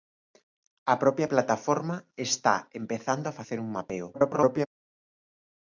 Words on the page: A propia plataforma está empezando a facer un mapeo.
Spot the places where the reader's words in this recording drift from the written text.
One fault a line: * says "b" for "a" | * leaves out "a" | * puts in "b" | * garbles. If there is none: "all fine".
* garbles